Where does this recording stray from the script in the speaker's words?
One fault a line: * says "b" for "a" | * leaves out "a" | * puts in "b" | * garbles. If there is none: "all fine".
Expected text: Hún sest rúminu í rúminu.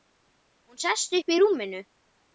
* says "upp" for "rúminu"